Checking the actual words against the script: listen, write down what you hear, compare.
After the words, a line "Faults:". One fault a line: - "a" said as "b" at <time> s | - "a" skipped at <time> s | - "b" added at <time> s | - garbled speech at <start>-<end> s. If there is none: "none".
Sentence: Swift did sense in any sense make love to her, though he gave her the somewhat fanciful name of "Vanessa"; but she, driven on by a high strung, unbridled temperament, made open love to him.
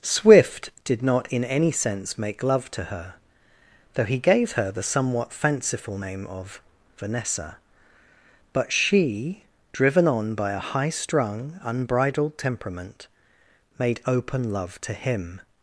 Swift did not in any sense make love to her, though he gave her the somewhat fanciful name of "Vanessa"; but she, driven on by a high strung, unbridled temperament, made open love to him.
Faults:
- "sense" said as "not" at 1.0 s